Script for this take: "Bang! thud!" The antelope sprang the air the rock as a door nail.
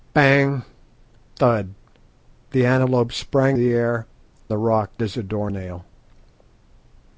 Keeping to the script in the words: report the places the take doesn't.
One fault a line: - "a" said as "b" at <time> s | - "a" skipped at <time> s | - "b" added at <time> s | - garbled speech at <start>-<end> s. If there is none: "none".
none